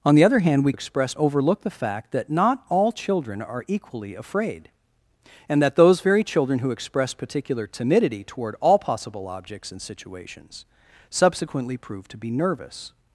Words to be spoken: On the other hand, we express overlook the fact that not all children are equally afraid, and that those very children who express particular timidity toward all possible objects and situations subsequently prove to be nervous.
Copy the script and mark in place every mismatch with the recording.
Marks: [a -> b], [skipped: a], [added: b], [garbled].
On the other hand, we express overlook the fact that not all children are equally afraid, and that those very children who express particular timidity toward all possible objects and situations subsequently prove to be nervous.